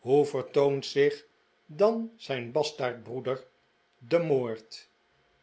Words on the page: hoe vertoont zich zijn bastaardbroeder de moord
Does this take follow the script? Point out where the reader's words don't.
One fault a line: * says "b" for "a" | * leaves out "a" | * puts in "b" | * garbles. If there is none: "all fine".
* puts in "dan"